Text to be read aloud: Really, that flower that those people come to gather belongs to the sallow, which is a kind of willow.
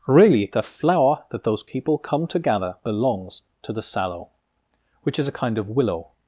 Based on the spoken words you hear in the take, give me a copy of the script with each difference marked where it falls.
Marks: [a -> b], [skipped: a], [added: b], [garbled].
Really, [that -> the] flower that those people come to gather belongs to the sallow, which is a kind of willow.